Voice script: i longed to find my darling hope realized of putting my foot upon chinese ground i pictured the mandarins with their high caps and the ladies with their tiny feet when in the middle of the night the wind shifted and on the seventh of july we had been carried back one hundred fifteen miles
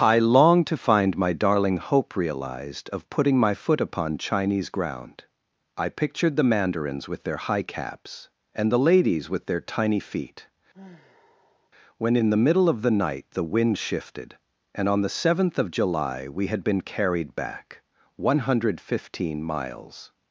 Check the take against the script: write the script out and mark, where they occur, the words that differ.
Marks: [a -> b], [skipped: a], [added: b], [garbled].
i longed to find my darling hope realized of putting my foot upon chinese ground i pictured the mandarins with their high caps and the ladies with their tiny feet when in the middle of the night the wind shifted and on the seventh of july we had been carried back one hundred fifteen miles